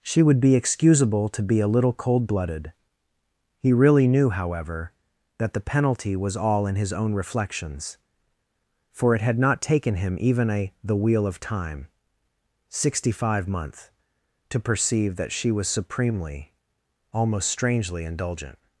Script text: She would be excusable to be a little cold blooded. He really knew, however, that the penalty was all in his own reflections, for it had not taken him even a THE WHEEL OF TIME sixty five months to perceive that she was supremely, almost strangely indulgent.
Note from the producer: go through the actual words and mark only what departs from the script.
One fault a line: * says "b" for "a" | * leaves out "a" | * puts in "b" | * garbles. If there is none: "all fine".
all fine